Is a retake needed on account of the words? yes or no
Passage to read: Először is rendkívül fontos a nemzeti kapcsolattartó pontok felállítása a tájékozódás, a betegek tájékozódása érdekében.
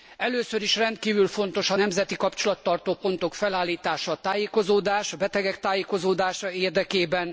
no